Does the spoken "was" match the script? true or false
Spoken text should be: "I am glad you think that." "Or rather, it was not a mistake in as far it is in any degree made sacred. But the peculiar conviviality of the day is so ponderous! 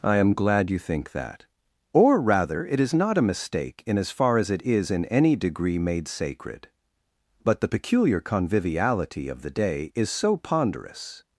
false